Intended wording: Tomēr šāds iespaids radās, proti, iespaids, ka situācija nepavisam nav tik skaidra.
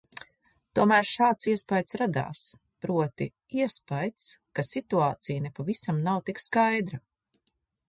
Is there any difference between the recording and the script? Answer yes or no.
no